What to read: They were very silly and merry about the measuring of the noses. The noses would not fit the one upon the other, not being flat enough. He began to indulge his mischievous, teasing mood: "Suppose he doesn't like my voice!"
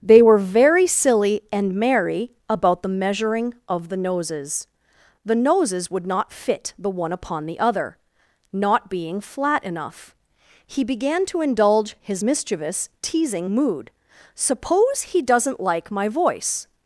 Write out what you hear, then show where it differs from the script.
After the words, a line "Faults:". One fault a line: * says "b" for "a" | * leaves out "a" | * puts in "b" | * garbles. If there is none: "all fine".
They were very silly and merry about the measuring of the noses. The noses would not fit the one upon the other, not being flat enough. He began to indulge his mischievous, teasing mood: "Suppose he doesn't like my voice!"
Faults:
all fine